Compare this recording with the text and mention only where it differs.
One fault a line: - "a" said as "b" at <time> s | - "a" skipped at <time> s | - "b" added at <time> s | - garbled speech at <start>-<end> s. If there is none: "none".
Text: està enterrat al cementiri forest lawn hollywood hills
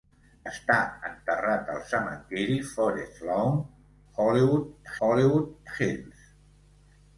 - "hollywood" added at 5.1 s